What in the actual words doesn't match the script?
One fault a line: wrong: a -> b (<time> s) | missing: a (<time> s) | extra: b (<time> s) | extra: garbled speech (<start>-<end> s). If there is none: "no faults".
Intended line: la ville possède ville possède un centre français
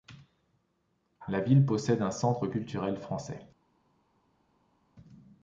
missing: ville possède (2.0 s)
extra: culturel (2.4 s)